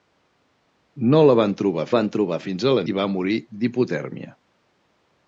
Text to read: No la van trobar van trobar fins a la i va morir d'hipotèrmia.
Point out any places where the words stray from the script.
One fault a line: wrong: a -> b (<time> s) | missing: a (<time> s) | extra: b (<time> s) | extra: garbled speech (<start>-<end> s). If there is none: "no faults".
no faults